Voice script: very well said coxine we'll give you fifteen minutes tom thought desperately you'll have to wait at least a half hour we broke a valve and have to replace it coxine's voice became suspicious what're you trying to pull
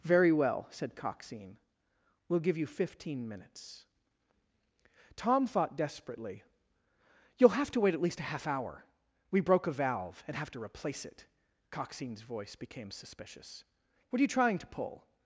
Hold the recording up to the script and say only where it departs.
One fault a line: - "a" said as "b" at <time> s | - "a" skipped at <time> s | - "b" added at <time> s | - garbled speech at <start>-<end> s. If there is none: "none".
none